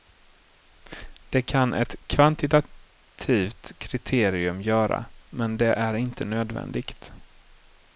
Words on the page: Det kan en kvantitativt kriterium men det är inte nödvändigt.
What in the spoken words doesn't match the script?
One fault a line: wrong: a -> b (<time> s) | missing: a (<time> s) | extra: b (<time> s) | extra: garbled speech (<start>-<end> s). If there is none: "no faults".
wrong: en -> ett (1.7 s)
extra: göra (4.6 s)